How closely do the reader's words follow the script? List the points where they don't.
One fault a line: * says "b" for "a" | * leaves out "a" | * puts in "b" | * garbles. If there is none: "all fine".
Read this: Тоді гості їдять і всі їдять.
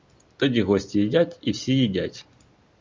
all fine